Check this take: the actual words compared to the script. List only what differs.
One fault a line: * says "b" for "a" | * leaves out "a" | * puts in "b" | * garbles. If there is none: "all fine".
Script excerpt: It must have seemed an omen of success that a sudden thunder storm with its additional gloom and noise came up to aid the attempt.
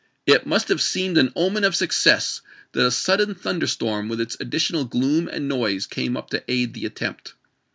all fine